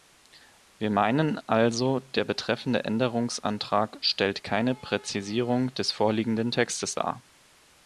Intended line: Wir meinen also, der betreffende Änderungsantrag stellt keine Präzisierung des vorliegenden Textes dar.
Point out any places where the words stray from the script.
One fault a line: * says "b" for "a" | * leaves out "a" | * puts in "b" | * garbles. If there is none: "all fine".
all fine